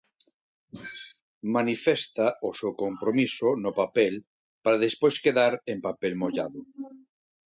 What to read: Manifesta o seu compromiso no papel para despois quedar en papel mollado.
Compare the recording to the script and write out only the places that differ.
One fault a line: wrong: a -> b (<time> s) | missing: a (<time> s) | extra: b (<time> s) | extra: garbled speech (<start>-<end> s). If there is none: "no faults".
no faults